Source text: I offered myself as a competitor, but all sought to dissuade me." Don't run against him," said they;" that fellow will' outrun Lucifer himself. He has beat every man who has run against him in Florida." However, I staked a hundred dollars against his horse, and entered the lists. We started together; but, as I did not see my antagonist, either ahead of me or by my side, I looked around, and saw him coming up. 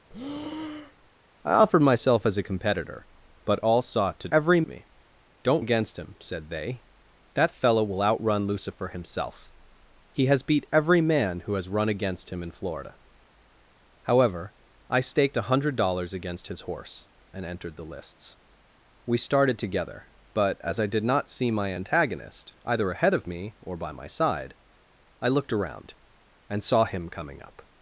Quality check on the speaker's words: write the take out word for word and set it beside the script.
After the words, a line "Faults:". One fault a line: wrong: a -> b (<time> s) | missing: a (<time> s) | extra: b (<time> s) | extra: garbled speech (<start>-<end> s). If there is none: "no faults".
I offered myself as a competitor, but all sought to every me." Don't against him," said they;" that fellow will' outrun Lucifer himself. He has beat every man who has run against him in Florida." However, I staked a hundred dollars against his horse, and entered the lists. We started together; but, as I did not see my antagonist, either ahead of me or by my side, I looked around, and saw him coming up.
Faults:
wrong: dissuade -> every (4.3 s)
missing: run (5.6 s)